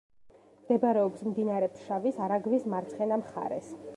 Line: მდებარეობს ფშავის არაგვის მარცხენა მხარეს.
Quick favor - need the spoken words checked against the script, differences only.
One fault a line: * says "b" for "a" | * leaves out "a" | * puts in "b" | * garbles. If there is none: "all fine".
* puts in "მდინარე"